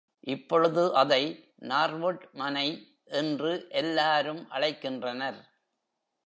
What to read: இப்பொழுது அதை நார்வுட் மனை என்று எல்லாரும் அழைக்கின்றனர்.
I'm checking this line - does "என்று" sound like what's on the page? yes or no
yes